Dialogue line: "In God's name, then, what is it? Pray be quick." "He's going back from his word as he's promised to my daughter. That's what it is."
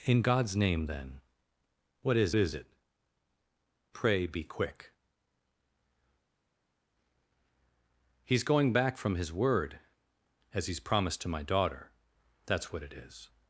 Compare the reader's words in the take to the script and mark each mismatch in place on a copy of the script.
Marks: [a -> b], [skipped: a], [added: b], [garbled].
"In God's name, then, what is [added: is] it? Pray be quick." "He's going back from his word as he's promised to my daughter. That's what it is."